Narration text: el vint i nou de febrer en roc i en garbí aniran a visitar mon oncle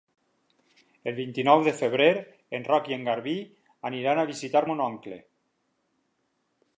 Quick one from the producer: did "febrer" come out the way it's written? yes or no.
yes